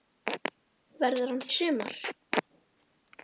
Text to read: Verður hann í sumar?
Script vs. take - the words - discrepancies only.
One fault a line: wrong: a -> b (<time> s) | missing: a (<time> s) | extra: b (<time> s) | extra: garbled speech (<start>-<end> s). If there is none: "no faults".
no faults